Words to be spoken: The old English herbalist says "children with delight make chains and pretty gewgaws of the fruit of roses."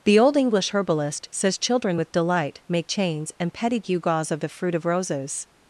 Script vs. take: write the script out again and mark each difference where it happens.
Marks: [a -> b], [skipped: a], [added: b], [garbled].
The old English herbalist says "children with delight make chains and [pretty -> petty] gewgaws of the fruit of roses."